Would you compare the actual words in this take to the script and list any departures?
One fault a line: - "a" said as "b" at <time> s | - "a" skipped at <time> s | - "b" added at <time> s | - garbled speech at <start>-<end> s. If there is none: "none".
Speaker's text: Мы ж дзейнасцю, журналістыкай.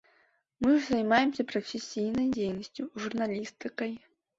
- "займаемся прафесійнай" added at 0.9 s